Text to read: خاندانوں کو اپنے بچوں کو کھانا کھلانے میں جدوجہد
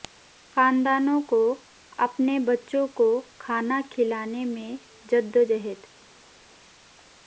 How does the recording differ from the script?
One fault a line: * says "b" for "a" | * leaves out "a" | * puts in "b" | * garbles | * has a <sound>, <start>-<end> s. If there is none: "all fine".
all fine